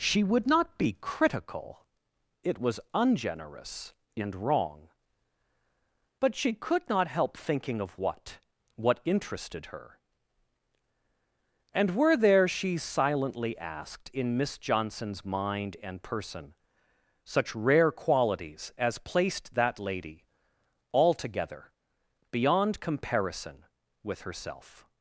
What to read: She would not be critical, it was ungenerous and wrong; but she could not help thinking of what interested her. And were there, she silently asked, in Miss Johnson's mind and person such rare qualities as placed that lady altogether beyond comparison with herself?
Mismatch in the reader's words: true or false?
true